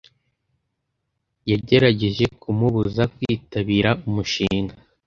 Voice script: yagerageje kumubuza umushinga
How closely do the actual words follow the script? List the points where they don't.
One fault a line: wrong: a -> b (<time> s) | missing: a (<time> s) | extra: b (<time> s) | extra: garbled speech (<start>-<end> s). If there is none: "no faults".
extra: kwitabira (3.1 s)